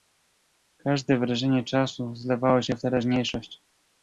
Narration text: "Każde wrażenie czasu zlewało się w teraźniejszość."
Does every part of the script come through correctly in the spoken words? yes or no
yes